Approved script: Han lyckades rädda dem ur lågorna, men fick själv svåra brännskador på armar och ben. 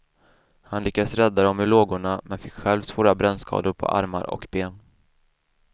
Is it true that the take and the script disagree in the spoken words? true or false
false